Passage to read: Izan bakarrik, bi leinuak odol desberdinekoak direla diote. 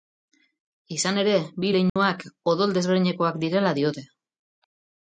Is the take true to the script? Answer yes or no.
no